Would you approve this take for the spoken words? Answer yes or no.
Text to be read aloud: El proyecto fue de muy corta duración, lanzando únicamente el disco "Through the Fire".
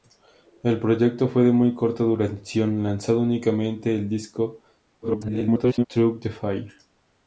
no